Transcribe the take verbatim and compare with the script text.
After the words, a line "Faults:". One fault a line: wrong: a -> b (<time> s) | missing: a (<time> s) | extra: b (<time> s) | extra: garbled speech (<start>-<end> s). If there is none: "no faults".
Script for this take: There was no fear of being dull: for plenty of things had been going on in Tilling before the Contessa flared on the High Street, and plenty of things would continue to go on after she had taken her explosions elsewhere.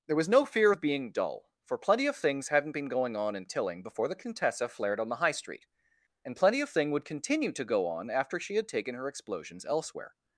There was no fear of being dull: for plenty of things hadn't been going on in Tilling before the Contessa flared on the High Street, and plenty of thing would continue to go on after she had taken her explosions elsewhere.
Faults:
wrong: had -> hadn't (2.5 s)
wrong: things -> thing (6.7 s)